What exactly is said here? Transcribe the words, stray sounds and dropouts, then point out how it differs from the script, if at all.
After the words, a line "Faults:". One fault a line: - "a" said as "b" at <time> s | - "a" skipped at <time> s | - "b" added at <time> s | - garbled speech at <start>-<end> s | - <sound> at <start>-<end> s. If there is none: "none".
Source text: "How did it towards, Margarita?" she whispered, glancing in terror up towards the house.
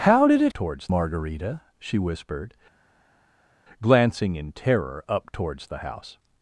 "How did it towards, Margarita?" she whispered, glancing in terror up towards the house.
Faults:
none